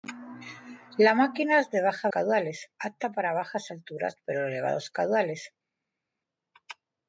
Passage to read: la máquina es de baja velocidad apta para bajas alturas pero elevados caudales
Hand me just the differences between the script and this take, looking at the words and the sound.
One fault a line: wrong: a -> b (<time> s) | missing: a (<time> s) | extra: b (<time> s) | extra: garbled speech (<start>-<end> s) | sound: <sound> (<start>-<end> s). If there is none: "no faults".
wrong: velocidad -> caudales (2.1 s)